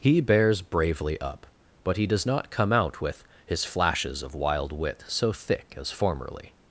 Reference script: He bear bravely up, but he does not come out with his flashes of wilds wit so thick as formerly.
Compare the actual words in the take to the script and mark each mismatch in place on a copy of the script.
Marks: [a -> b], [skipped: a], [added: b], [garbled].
He [bear -> bears] bravely up, but he does not come out with his flashes of [wilds -> wild] wit so thick as formerly.